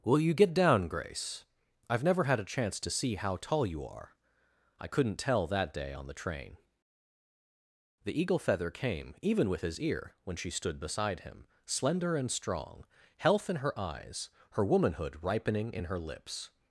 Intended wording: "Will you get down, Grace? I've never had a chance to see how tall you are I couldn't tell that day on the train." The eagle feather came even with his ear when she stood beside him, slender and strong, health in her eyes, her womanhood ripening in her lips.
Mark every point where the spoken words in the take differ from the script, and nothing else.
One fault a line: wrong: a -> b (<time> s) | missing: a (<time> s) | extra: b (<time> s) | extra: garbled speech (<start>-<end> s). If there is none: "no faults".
no faults